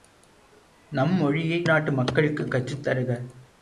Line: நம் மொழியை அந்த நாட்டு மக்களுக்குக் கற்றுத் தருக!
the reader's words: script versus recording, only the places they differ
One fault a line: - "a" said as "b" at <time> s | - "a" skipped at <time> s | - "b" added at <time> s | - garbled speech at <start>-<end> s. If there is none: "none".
- "அந்த" skipped at 1.6 s